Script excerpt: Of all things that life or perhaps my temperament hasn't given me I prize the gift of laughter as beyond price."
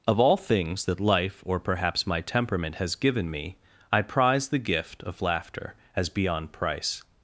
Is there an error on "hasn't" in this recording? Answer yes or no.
yes